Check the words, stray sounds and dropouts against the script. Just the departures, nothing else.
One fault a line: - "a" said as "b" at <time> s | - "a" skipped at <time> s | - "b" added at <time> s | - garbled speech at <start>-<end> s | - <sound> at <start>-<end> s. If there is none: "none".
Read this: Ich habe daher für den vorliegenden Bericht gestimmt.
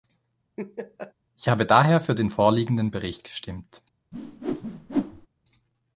- laugh at 0.6-1.1 s
- whoosh at 4.1-5.3 s